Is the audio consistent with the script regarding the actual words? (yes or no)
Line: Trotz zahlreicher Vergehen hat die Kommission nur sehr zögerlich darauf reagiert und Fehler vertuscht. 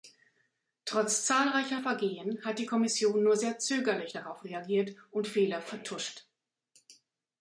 yes